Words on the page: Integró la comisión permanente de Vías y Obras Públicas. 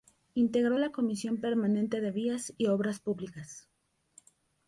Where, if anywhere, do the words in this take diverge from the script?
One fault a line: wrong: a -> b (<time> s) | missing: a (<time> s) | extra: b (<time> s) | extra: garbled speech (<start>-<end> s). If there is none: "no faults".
no faults